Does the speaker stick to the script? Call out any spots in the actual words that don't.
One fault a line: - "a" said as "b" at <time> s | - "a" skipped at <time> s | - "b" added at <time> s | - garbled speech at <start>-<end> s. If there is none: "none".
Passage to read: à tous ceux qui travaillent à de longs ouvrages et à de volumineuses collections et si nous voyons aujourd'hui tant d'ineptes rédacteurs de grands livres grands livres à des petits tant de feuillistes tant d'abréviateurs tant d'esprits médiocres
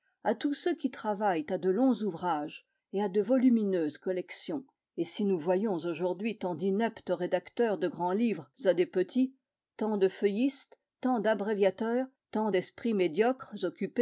- "grands livres" skipped at 8.5 s